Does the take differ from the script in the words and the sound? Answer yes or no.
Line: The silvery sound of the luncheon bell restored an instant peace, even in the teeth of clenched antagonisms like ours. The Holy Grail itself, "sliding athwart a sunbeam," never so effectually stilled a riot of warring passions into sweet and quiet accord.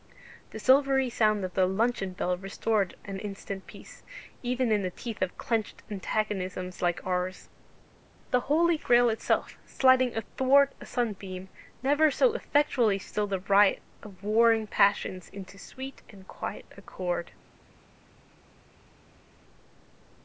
no